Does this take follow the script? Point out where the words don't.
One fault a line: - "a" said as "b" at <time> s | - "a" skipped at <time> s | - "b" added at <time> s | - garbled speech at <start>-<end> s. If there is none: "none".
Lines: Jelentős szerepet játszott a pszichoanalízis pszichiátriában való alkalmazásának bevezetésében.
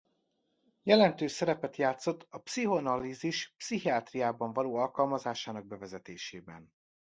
none